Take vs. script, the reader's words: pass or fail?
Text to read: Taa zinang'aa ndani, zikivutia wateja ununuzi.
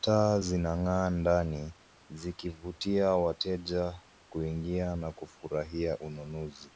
fail